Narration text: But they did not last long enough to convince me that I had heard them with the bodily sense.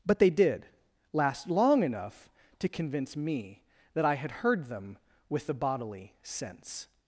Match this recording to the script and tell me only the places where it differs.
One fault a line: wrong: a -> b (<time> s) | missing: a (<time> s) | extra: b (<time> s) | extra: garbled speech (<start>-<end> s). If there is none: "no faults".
missing: not (0.7 s)